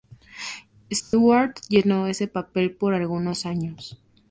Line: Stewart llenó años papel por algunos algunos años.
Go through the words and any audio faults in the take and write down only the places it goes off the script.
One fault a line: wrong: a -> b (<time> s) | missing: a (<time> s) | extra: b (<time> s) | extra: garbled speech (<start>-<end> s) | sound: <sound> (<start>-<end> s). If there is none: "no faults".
sound: dropout (1.0-1.1 s)
wrong: años -> ese (2.1 s)
missing: algunos (3.5 s)